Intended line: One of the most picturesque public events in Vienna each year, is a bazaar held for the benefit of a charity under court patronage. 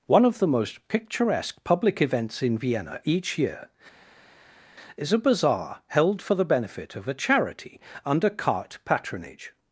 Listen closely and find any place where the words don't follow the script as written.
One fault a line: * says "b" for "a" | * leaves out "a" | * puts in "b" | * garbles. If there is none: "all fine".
* says "cart" for "court"